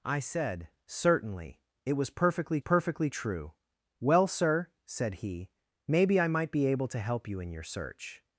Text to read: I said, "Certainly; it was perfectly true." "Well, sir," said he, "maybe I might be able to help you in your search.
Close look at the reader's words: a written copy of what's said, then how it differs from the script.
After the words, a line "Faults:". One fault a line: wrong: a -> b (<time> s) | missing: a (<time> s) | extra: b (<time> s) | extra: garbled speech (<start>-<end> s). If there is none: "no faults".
I said, "Certainly; it was perfectly perfectly true." "Well, sir," said he, "maybe I might be able to help you in your search.
Faults:
extra: perfectly (2.6 s)